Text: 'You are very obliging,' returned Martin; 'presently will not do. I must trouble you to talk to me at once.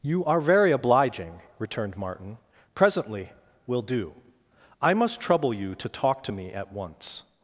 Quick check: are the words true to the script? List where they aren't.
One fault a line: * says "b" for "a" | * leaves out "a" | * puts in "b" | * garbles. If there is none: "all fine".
* leaves out "not"